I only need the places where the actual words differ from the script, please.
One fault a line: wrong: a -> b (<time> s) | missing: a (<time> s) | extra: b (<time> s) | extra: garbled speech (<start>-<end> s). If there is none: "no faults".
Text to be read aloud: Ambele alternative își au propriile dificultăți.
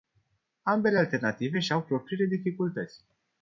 no faults